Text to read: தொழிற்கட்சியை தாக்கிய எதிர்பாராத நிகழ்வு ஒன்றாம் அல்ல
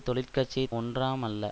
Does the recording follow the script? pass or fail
fail